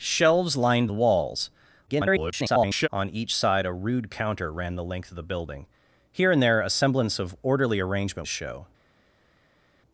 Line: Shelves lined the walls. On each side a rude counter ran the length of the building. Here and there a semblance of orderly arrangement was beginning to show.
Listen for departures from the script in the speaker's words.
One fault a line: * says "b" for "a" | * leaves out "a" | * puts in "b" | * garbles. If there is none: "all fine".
* garbles
* leaves out "was beginning to"